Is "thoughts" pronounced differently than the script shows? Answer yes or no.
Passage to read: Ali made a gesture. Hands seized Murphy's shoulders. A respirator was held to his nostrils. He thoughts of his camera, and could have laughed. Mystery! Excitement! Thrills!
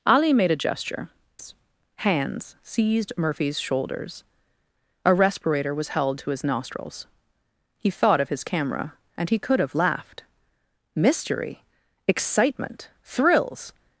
yes